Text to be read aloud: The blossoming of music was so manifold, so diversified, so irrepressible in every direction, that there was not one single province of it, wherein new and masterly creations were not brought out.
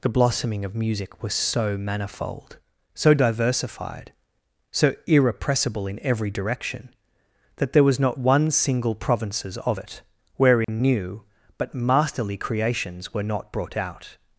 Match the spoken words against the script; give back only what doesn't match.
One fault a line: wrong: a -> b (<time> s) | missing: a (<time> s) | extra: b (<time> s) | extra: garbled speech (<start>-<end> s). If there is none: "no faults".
wrong: province -> provinces (8.9 s)
wrong: and -> but (11.6 s)